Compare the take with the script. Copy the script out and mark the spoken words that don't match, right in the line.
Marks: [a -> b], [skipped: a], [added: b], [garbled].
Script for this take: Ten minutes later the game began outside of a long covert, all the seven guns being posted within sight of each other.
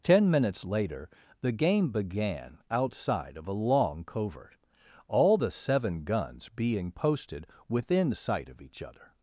Ten minutes later the game began outside of a long covert, all the seven guns being posted within sight of each other.